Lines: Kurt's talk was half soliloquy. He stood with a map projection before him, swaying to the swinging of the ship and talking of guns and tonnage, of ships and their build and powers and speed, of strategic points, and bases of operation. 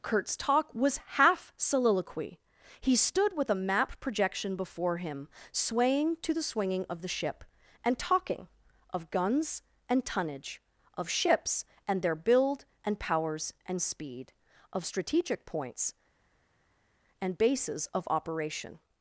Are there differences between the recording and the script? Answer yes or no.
no